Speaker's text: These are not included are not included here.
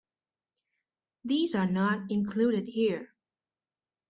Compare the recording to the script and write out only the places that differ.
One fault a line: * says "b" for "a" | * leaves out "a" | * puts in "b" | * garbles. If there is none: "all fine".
* leaves out "are not included"